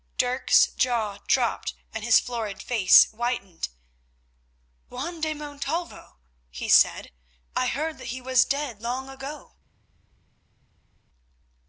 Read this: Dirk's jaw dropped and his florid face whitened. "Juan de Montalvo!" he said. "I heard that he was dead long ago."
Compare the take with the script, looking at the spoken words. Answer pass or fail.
pass